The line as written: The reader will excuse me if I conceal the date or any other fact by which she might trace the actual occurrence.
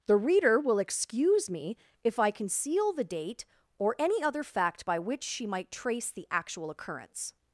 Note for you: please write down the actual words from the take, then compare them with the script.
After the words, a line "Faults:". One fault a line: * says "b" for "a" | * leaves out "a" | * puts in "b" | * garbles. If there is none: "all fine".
The reader will excuse me if I conceal the date or any other fact by which she might trace the actual occurrence.
Faults:
all fine